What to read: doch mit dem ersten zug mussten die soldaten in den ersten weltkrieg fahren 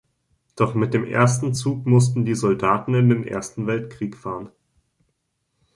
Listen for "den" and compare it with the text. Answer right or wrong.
right